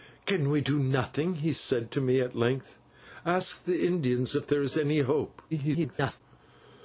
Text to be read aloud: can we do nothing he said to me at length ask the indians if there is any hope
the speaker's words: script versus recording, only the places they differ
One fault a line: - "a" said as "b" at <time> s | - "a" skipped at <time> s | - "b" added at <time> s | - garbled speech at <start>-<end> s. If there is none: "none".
- garbled speech at 5.5-6.2 s